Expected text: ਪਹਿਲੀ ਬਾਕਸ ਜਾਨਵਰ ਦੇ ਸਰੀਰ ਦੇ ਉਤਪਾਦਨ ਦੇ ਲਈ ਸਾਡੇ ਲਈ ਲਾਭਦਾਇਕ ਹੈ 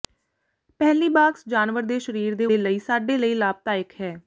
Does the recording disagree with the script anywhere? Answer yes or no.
yes